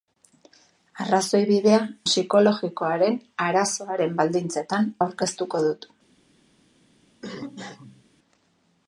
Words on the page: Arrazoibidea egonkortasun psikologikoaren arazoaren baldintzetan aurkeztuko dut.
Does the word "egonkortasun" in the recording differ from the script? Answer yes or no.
yes